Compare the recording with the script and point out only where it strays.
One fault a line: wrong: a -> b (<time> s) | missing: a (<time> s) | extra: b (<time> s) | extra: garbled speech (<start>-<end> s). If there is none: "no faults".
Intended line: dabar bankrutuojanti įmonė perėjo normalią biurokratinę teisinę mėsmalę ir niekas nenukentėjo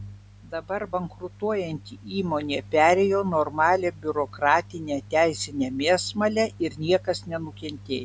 no faults